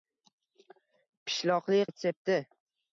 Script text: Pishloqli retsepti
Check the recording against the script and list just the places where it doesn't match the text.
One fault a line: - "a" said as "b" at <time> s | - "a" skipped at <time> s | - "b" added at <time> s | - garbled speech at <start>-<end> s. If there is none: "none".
none